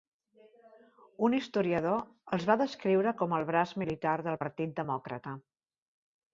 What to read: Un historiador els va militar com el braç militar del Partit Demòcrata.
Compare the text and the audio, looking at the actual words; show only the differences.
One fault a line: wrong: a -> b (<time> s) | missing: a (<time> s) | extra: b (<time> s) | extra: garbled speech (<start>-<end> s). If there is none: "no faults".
wrong: militar -> descriure (2.6 s)